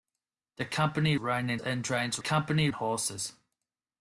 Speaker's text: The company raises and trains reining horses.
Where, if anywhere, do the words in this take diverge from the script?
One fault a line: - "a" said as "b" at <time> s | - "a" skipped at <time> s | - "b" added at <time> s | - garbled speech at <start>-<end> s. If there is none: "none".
- "raises" said as "reining" at 1.1 s
- "reining" said as "company" at 2.2 s